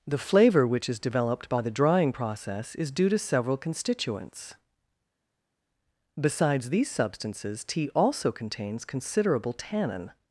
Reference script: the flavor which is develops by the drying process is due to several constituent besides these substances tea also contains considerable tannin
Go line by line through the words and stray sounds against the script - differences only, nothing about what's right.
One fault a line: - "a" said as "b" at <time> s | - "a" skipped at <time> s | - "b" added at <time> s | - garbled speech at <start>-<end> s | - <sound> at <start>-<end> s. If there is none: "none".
- "develops" said as "developed" at 1.0 s
- "constituent" said as "constituents" at 3.6 s